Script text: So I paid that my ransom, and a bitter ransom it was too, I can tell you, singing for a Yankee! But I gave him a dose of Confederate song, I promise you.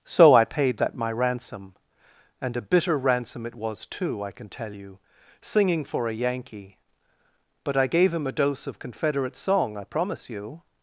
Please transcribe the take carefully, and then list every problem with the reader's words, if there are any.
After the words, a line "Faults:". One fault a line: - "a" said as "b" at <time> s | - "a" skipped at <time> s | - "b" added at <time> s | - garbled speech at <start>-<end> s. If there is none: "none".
So I paid that my ransom, and a bitter ransom it was too, I can tell you, singing for a Yankee! But I gave him a dose of Confederate song, I promise you.
Faults:
none